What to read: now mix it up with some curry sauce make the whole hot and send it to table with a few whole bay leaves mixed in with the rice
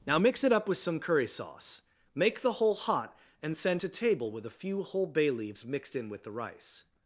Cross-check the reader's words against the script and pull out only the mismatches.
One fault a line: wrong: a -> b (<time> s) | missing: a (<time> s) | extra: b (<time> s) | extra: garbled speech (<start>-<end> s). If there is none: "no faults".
missing: it (3.8 s)